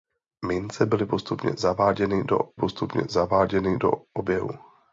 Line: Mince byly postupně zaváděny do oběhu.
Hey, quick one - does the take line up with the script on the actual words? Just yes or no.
no